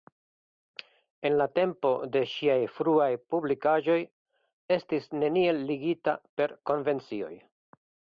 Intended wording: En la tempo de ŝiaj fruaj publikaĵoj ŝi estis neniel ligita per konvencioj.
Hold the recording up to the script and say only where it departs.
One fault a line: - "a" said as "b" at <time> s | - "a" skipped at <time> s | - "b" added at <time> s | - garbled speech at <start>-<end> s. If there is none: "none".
- "ŝi" skipped at 4.0 s